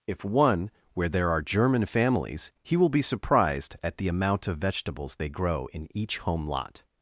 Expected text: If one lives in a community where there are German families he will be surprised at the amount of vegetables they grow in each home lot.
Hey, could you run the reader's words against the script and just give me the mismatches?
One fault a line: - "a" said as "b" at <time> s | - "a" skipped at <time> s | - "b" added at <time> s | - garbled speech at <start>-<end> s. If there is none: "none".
- "lives in a community" skipped at 0.7 s